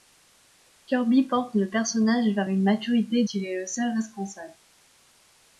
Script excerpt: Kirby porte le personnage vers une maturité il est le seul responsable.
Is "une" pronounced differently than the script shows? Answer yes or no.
no